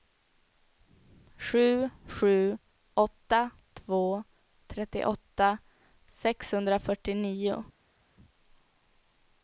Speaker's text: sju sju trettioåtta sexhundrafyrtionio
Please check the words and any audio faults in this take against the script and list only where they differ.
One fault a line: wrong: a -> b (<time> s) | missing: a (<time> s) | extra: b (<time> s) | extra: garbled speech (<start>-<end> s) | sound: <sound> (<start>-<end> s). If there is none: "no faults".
extra: åtta två (2.9 s)